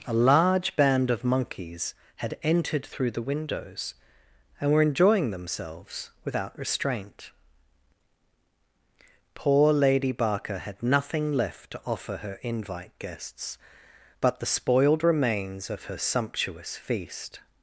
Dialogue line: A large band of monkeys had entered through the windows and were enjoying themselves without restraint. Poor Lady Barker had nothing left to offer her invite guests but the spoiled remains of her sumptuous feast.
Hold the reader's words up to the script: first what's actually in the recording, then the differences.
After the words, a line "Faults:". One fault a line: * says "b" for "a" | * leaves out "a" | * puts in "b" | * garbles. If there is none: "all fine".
A large band of monkeys had entered through the windows and were enjoying themselves without restraint. Poor Lady Barker had nothing left to offer her invite guests but the spoiled remains of her sumptuous feast.
Faults:
all fine